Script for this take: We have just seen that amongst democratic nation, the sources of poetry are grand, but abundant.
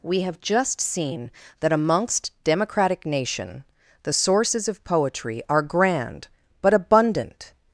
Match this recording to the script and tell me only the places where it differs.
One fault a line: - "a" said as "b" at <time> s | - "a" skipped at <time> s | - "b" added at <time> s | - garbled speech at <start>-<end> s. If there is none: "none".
none